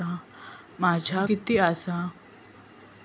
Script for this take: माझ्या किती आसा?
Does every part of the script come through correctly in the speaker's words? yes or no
yes